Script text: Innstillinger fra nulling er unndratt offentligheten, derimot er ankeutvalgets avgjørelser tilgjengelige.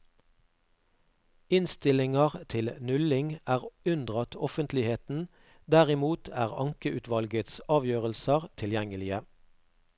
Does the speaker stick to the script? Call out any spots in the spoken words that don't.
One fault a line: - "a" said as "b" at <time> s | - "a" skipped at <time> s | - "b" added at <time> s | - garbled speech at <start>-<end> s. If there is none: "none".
- "fra" said as "til" at 2.5 s